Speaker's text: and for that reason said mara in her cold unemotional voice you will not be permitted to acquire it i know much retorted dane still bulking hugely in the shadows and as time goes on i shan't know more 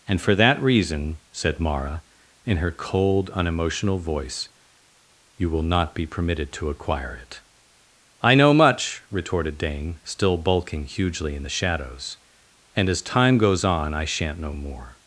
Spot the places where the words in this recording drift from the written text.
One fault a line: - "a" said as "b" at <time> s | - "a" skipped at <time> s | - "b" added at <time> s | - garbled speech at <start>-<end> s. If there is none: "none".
none